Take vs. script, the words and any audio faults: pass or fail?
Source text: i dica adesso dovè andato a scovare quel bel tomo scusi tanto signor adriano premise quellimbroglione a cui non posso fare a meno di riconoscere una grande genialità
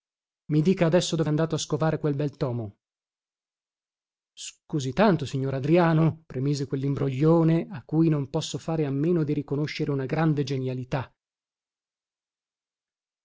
pass